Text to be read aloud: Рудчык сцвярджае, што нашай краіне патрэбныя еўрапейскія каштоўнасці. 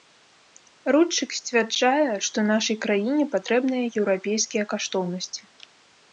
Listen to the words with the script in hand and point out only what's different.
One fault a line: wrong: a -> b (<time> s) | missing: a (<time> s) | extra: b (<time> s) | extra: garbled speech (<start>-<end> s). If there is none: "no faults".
no faults